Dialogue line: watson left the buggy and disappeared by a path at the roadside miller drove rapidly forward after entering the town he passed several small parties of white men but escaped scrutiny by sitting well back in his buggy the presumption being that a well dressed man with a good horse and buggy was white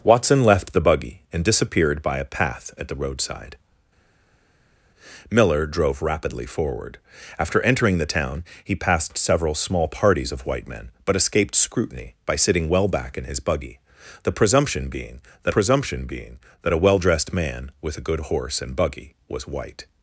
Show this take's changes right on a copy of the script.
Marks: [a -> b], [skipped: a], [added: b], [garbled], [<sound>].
watson left the buggy and disappeared by a path at the roadside miller drove rapidly forward after entering the town he passed several small parties of white men but escaped scrutiny by sitting well back in his buggy the presumption being that [added: presumption being that] a well dressed man with a good horse and buggy was white